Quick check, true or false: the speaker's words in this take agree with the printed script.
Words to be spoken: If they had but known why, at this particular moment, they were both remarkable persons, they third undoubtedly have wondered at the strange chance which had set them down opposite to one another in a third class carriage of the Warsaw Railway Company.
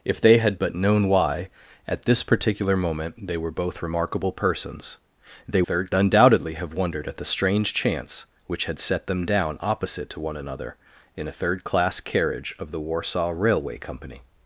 true